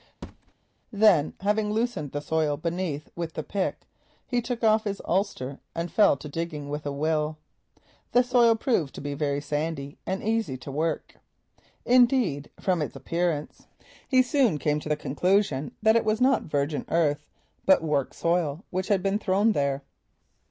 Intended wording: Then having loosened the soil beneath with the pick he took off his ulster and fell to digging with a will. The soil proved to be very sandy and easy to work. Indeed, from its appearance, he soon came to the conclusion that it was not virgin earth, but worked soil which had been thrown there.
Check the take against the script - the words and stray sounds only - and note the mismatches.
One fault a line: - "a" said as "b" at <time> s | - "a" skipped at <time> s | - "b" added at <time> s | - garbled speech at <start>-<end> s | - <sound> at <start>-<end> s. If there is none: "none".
- thud at 0.2-0.5 s